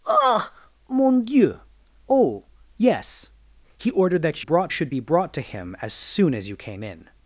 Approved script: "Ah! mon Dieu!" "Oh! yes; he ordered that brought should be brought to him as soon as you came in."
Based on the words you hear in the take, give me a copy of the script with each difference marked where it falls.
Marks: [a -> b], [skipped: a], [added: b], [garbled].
"Ah! mon Dieu!" "Oh! yes; he ordered that brought should be brought to him as soon as you came in."